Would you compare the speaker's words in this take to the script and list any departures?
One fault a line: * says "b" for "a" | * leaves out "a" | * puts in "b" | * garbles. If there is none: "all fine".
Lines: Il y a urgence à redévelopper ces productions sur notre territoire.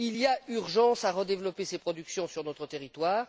all fine